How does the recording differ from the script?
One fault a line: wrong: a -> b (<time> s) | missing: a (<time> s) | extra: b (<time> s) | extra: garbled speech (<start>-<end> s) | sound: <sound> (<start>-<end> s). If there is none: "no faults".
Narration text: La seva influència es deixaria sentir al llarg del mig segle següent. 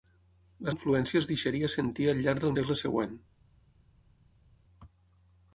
missing: seva (0.7 s)
missing: mig (2.5 s)